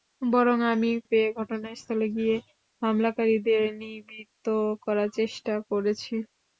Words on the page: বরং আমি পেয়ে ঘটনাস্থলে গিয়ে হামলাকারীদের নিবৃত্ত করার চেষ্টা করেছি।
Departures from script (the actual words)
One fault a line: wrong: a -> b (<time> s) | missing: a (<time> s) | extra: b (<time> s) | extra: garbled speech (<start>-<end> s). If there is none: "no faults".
no faults